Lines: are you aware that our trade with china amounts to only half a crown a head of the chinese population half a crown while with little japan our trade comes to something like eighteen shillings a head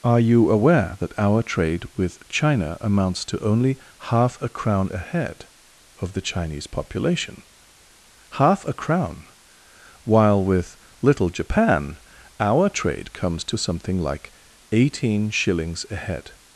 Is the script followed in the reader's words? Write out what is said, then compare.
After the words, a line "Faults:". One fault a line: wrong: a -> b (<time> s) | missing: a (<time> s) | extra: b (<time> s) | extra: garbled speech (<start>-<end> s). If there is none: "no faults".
are you aware that our trade with china amounts to only half a crown a head of the chinese population half a crown while with little japan our trade comes to something like eighteen shillings a head
Faults:
no faults